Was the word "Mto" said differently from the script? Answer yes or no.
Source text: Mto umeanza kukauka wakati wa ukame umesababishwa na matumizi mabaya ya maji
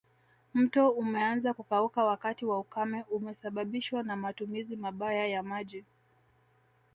no